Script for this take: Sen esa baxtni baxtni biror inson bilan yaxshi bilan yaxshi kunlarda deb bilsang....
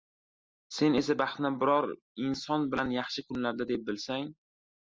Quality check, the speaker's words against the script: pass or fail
fail